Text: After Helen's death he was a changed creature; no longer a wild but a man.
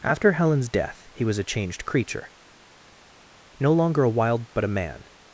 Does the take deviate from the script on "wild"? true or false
false